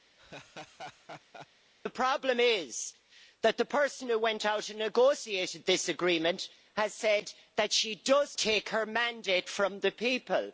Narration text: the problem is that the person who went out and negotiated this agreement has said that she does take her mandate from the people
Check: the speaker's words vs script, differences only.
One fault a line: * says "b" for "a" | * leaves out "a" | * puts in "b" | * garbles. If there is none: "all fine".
all fine